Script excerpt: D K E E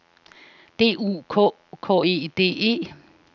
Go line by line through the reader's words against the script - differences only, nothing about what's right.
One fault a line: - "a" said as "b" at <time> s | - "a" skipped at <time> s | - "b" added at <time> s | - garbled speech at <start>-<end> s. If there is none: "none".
- "U" added at 1.0 s
- "K" added at 1.8 s
- "D" added at 2.3 s